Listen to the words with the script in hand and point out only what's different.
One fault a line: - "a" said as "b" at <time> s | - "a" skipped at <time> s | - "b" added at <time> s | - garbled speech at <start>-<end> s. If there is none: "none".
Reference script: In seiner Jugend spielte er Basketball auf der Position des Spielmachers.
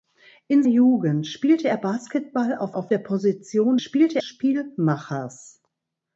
- "seiner" skipped at 0.6 s
- "auf" added at 2.7 s
- "des" said as "spielte" at 3.8 s